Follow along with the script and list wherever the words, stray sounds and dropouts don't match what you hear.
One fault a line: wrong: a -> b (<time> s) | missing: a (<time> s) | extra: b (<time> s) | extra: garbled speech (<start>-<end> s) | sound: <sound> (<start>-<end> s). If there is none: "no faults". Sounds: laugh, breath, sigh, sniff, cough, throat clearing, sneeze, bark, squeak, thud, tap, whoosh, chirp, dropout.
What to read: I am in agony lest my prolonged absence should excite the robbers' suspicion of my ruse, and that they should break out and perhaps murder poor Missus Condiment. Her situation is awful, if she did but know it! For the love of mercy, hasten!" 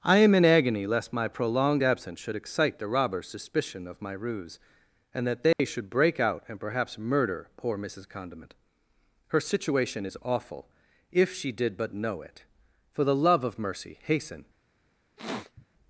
sound: dropout (5.5-5.6 s)
sound: sniff (15.2-15.7 s)